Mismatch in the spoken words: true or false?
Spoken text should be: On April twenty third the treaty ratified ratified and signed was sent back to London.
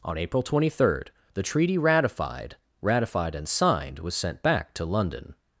false